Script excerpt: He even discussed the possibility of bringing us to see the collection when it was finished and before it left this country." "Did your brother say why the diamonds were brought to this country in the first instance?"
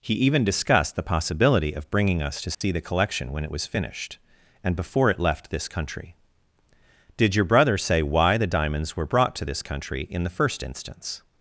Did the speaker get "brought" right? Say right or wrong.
right